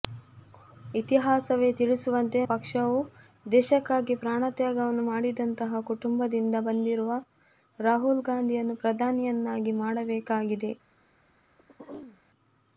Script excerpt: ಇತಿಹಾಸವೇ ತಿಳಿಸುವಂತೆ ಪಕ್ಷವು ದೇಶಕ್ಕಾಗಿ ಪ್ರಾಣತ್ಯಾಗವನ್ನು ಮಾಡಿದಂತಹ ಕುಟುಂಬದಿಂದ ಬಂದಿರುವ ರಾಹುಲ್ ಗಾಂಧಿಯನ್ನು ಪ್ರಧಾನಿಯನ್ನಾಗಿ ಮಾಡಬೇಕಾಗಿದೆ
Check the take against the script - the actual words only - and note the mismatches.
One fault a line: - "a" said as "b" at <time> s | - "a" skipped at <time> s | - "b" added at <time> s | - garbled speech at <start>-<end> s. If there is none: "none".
none